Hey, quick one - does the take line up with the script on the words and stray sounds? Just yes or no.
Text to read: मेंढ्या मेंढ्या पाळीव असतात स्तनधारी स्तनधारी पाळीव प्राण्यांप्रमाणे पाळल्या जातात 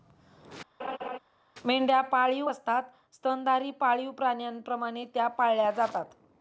no